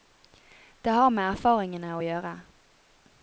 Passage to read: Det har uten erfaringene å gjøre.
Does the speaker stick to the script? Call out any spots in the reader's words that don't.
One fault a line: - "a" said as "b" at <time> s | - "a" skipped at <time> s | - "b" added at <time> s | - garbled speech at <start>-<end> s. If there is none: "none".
- "uten" said as "med" at 1.1 s